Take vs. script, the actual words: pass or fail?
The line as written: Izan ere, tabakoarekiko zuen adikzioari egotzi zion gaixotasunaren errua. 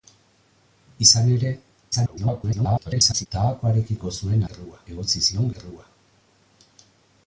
fail